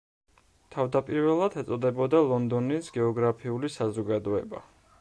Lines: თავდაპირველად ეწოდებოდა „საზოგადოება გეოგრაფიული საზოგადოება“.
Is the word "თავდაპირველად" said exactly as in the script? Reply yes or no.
yes